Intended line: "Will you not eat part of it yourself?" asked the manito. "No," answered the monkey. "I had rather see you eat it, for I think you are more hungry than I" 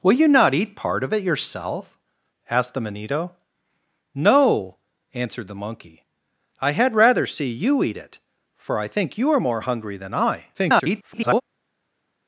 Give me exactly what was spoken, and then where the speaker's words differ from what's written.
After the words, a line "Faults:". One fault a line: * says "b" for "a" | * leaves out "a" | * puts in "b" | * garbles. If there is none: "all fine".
"Will you not eat part of it yourself?" asked the manito. "No," answered the monkey. "I had rather see you eat it, for I think you are more hungry than I" [garbled]
Faults:
* garbles